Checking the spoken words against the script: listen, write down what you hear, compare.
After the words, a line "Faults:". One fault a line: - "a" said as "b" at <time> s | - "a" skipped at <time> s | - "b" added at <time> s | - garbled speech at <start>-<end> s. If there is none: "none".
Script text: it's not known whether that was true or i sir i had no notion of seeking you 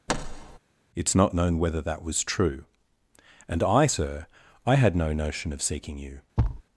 it's not known whether that was true and i sir i had no notion of seeking you
Faults:
- "or" said as "and" at 3.5 s